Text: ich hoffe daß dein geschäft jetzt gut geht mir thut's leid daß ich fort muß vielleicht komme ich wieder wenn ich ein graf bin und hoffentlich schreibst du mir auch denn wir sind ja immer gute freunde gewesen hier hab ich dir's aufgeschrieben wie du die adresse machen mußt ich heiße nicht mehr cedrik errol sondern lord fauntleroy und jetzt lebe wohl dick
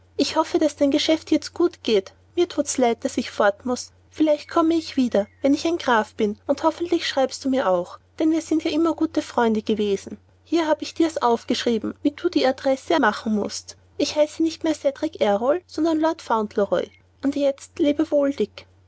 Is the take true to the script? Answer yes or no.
yes